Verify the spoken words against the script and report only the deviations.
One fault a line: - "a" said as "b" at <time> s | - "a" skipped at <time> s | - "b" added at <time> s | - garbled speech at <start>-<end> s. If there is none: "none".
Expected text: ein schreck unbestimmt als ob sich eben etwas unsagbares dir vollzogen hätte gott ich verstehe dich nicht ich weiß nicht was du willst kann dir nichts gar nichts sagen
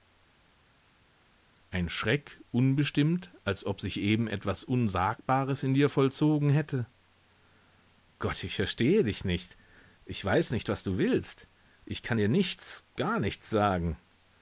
- "in" added at 5.6 s
- "ich" added at 11.8 s